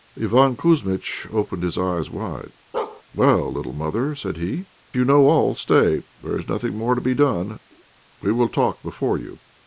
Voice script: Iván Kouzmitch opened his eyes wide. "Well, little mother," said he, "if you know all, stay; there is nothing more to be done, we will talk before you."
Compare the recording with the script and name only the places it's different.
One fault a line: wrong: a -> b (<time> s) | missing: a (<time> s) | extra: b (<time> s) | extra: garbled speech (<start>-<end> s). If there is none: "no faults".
missing: if (4.7 s)